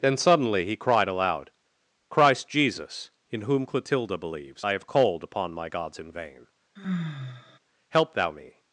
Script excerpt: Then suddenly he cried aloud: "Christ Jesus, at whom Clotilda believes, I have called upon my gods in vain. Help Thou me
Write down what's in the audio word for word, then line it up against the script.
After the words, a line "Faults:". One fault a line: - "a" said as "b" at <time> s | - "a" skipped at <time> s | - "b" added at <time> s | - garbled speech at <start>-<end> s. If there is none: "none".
Then suddenly he cried aloud: "Christ Jesus, in whom Clotilda believes, I have called upon my gods in vain. Help Thou me
Faults:
- "at" said as "in" at 3.3 s